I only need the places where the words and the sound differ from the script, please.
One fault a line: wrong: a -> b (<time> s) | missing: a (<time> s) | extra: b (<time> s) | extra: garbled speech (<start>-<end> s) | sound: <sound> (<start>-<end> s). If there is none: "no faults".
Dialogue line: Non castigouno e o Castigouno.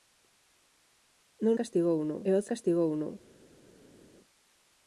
no faults